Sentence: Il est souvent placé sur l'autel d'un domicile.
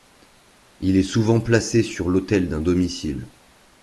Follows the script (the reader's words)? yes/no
yes